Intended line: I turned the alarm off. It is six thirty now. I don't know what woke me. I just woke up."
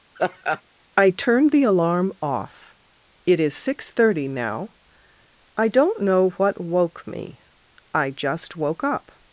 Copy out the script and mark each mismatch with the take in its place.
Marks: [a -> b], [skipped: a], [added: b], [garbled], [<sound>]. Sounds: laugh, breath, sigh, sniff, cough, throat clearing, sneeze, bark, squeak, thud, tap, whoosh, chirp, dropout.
[laugh] I turned the alarm off. It is six thirty now. I don't know what woke me. I just woke up."